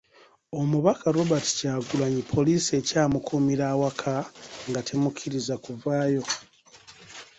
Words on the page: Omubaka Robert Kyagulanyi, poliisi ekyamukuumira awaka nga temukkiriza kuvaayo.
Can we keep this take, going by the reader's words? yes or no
yes